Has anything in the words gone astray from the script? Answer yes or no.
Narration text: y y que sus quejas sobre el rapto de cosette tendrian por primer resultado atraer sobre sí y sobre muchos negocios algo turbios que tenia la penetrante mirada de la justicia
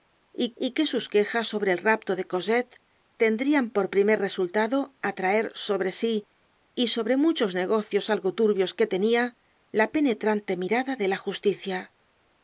no